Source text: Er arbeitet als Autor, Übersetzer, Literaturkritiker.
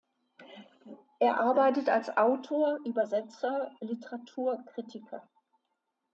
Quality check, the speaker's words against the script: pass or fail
pass